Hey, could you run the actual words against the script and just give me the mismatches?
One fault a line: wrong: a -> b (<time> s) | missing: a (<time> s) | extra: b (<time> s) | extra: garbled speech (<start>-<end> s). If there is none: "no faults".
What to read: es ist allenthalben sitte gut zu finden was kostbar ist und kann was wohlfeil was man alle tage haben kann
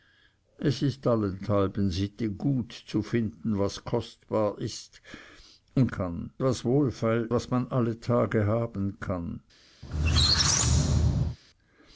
no faults